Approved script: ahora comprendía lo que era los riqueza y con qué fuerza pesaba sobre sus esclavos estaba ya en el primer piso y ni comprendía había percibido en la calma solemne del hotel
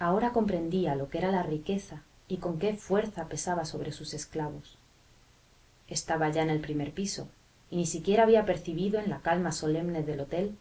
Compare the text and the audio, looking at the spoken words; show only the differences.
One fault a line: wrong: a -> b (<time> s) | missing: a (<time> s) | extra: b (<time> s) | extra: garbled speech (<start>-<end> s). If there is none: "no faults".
wrong: los -> la (1.3 s)
wrong: comprendía -> siquiera (7.8 s)